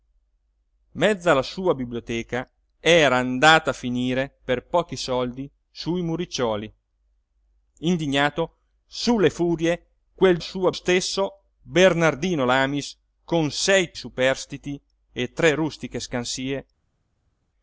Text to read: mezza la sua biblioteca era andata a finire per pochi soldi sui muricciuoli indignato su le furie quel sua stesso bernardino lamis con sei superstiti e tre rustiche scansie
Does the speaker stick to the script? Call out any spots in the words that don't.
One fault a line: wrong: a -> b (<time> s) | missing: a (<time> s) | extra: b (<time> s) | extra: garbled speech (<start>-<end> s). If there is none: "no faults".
no faults